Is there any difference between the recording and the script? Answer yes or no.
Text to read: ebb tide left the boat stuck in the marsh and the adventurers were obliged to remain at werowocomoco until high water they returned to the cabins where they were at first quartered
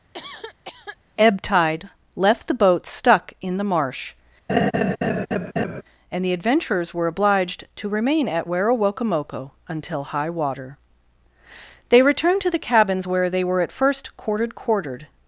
yes